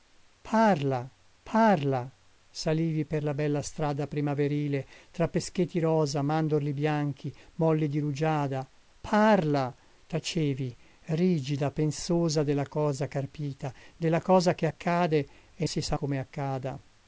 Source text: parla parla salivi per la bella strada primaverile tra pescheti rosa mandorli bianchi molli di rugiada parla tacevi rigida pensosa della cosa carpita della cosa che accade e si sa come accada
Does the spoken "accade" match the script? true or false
true